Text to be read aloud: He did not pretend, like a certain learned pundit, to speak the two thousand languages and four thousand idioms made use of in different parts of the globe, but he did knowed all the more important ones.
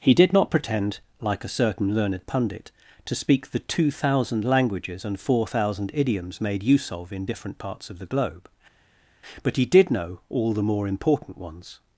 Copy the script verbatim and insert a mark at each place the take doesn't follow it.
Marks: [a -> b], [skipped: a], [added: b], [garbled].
He did not pretend, like a certain learned pundit, to speak the two thousand languages and four thousand idioms made use of in different parts of the globe, but he did [knowed -> know] all the more important ones.